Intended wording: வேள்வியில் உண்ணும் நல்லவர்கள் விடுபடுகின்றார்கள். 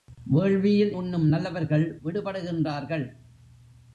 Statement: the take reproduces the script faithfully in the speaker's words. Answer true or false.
true